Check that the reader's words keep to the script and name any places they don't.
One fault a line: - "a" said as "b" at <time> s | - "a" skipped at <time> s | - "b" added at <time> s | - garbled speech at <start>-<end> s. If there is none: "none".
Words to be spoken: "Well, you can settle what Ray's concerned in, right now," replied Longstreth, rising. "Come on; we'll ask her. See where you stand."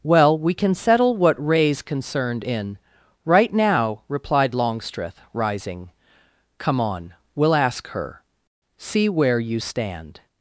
- "you" said as "we" at 0.3 s